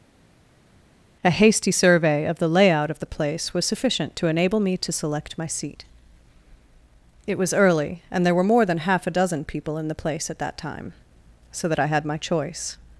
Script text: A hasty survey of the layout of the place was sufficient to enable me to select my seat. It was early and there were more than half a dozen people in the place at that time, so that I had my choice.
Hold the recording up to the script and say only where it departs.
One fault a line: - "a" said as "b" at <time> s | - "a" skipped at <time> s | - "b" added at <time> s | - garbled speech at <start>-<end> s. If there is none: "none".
none